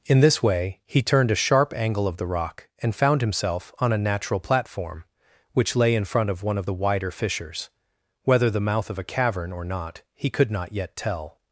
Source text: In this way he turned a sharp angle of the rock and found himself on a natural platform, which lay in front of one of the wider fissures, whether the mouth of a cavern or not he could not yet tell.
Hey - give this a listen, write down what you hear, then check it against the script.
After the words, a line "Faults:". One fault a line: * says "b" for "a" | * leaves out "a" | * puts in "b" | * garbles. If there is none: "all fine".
In this way he turned a sharp angle of the rock and found himself on a natural platform, which lay in front of one of the wider fissures, whether the mouth of a cavern or not he could not yet tell.
Faults:
all fine